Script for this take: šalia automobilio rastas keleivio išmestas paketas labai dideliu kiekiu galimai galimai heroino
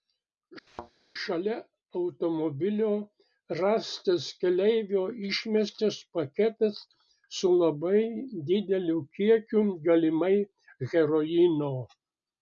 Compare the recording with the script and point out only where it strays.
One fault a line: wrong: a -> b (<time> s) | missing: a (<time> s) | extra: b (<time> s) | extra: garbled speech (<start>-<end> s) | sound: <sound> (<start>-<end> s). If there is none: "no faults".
sound: thud (0.7-0.9 s)
extra: su (7.4 s)
missing: galimai (10.3 s)